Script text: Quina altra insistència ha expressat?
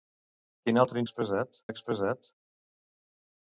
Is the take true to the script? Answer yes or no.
no